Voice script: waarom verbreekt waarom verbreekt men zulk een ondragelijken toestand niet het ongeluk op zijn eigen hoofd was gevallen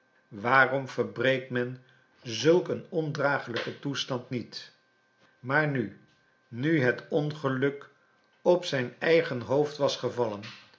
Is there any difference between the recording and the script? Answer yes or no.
yes